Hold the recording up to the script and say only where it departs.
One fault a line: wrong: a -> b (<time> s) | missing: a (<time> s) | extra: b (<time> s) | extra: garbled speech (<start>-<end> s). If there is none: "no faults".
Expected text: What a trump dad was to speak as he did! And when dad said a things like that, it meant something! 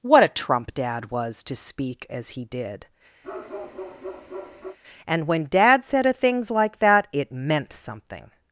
no faults